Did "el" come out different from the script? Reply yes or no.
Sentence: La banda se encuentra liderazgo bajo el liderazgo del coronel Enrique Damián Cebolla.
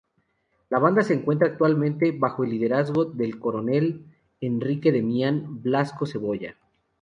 no